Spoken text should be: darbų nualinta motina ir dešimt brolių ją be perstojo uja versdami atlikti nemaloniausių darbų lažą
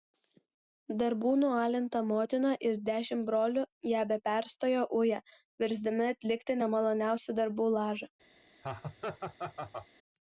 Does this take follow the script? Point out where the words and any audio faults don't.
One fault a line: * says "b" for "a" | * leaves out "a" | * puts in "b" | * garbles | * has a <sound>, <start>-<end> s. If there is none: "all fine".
* has a laugh, 8.6-9.9 s